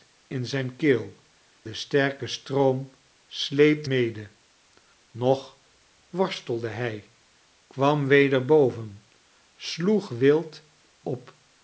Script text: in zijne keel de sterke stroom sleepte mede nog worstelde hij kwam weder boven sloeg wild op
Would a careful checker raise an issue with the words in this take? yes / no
no